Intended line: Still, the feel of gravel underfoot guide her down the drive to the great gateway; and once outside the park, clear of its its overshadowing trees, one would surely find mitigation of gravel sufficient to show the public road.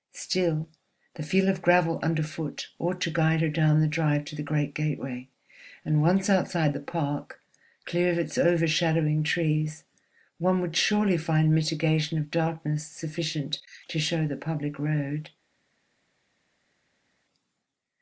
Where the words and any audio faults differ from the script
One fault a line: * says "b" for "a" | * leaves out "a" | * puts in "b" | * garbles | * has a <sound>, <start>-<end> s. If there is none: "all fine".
* puts in "ought to"
* leaves out "its"
* says "darkness" for "gravel"